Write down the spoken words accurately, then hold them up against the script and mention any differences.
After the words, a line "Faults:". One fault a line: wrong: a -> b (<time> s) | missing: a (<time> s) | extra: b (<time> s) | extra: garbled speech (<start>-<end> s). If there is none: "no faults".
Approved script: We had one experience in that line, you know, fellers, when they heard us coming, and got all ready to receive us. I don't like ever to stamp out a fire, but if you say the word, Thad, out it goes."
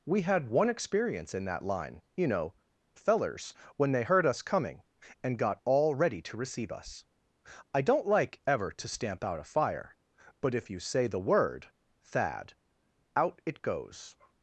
We had one experience in that line, you know, fellers, when they heard us coming, and got all ready to receive us. I don't like ever to stamp out a fire, but if you say the word, Thad, out it goes."
Faults:
no faults